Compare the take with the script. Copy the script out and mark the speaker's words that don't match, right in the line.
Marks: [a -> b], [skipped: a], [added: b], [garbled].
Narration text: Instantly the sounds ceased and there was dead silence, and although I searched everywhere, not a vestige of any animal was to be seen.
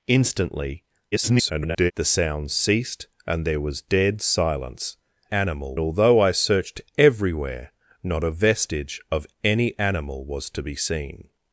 Instantly [garbled] the sounds ceased and there was dead silence, [and -> animal] although I searched everywhere, not a vestige of any animal was to be seen.